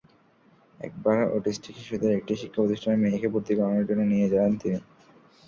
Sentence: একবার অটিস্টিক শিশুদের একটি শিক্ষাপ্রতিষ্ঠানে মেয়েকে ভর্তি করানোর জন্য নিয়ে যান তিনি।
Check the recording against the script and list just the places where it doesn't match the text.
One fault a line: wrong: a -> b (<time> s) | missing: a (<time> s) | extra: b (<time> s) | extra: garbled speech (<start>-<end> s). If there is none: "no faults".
no faults